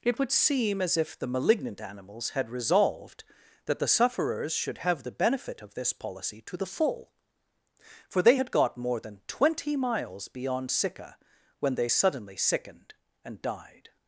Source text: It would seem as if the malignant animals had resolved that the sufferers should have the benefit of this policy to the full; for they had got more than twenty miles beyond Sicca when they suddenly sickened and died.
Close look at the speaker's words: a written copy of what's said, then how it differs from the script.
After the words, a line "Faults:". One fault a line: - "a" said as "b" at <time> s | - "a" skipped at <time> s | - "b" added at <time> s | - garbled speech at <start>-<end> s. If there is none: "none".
It would seem as if the malignant animals had resolved that the sufferers should have the benefit of this policy to the full; for they had got more than twenty miles beyond Sicca when they suddenly sickened and died.
Faults:
none